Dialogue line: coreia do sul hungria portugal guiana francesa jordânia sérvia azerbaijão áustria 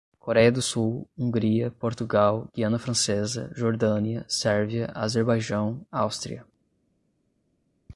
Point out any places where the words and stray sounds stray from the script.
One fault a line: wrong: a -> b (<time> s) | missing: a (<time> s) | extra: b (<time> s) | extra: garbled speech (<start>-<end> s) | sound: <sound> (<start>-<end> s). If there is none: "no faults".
no faults